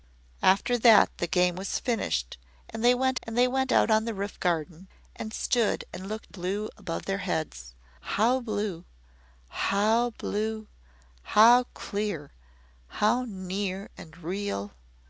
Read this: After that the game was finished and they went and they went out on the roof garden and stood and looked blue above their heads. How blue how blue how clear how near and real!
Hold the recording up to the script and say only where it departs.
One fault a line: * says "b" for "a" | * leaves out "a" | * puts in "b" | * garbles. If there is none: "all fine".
all fine